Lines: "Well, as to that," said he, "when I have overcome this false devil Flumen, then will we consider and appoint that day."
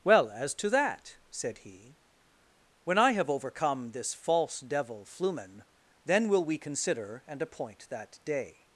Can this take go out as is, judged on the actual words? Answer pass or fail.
pass